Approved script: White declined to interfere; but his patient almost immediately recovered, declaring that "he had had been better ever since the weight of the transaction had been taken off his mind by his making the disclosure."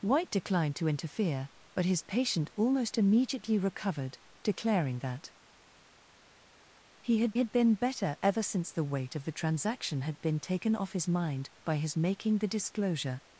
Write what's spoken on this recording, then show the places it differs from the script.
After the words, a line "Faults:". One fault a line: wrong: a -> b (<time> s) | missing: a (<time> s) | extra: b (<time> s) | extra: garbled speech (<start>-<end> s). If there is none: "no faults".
White declined to interfere; but his patient almost immediately recovered, declaring that "he had had been better ever since the weight of the transaction had been taken off his mind by his making the disclosure."
Faults:
no faults